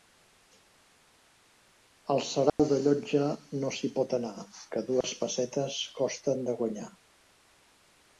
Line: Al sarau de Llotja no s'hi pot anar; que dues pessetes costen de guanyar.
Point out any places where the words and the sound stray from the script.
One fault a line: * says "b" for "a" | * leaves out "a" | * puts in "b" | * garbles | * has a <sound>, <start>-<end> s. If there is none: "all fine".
* has a dropout, 2.5-2.6 s
* has a dropout, 5.0-5.0 s